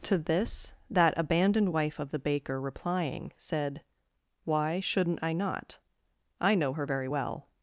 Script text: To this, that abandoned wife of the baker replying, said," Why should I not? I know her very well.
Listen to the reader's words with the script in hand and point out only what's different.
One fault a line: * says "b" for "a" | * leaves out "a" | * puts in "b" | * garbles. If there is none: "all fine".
* says "shouldn't" for "should"